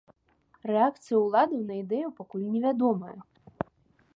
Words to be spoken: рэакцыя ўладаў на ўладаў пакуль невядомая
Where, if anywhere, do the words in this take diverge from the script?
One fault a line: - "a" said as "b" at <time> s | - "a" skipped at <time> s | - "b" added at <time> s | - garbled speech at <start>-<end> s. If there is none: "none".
- "ўладаў" said as "ідэю" at 1.8 s